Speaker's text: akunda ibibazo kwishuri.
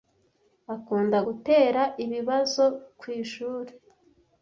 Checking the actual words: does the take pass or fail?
fail